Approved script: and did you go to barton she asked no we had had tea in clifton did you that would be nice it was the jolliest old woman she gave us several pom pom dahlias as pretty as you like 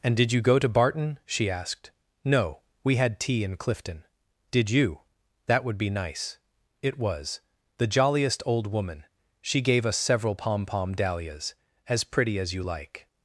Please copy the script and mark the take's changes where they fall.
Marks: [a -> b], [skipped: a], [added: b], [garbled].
and did you go to barton she asked no we had [skipped: had] tea in clifton did you that would be nice it was the jolliest old woman she gave us several pom pom dahlias as pretty as you like